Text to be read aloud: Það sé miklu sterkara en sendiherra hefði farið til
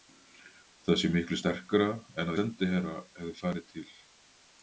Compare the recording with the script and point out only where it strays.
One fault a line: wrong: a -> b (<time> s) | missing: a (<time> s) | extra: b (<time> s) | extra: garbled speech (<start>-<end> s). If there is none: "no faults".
no faults